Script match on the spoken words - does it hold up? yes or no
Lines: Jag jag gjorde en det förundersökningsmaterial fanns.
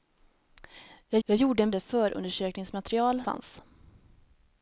yes